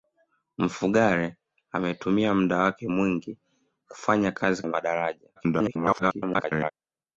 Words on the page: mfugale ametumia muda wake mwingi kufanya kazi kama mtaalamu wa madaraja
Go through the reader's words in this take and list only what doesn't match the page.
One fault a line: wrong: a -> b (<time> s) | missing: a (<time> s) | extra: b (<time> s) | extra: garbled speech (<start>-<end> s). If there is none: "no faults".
missing: kama mtaalamu (4.6 s)
extra: garbled speech (5.4-6.7 s)